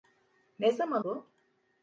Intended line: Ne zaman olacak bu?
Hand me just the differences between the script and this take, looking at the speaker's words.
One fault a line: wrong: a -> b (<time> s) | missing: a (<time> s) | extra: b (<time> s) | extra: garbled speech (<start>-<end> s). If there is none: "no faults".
missing: olacak (1.0 s)